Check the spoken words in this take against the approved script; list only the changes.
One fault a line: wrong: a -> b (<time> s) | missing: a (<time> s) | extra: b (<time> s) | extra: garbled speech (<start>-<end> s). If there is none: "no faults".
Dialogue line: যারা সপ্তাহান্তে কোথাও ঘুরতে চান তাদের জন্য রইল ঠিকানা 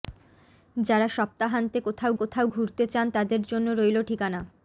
extra: কোথাও (2.2 s)